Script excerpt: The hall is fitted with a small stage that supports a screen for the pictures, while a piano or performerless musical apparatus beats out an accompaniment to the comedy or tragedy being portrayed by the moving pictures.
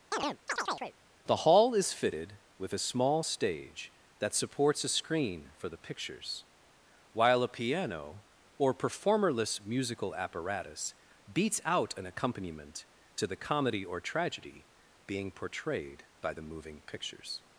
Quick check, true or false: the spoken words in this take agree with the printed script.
true